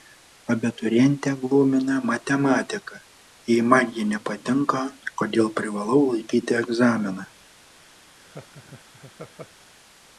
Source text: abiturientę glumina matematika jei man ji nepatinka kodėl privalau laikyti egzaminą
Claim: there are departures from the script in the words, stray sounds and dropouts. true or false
true